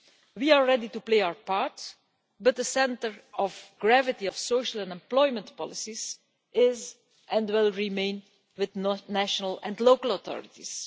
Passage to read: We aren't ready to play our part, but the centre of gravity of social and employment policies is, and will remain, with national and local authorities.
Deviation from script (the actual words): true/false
true